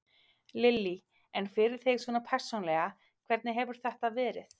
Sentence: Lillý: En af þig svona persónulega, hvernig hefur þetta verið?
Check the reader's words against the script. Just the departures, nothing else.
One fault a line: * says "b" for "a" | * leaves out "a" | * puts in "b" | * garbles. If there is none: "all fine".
* says "fyrir" for "af"